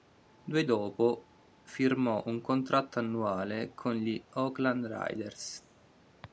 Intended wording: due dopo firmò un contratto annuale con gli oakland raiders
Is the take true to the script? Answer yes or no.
yes